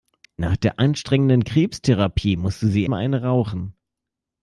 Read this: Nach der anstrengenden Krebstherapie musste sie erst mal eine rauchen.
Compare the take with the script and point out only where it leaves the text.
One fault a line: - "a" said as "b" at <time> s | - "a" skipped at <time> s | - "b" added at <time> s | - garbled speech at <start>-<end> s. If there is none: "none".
- "erst" skipped at 2.8 s